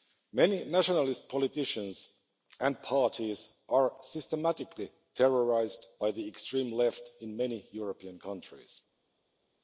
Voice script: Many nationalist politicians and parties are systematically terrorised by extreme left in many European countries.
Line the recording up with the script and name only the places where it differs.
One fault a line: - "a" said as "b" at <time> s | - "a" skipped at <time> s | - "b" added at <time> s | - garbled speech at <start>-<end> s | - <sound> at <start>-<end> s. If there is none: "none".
- "the" added at 6.1 s